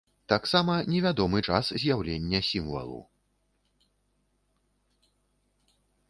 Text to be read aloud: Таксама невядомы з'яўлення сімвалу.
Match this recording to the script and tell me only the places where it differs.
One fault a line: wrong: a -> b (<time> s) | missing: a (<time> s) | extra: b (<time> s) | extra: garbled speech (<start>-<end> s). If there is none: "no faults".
extra: час (1.5 s)